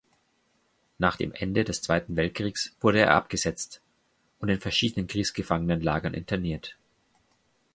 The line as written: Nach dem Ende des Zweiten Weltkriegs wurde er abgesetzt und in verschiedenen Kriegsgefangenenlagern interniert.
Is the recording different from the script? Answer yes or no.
no